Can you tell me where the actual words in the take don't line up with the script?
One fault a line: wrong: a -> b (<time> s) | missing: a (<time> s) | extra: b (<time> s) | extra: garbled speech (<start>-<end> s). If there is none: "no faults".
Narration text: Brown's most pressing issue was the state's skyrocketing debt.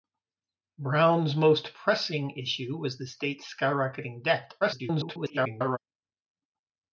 extra: garbled speech (4.6-5.8 s)